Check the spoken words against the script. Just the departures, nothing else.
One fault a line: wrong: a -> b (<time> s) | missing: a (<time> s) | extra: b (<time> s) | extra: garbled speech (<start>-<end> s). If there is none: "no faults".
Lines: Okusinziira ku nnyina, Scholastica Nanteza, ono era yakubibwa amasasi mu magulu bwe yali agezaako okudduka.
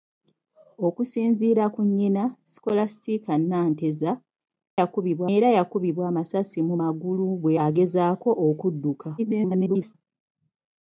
wrong: ono -> yakubibwa (4.8 s)
missing: yali (7.5 s)
extra: garbled speech (9.2-9.9 s)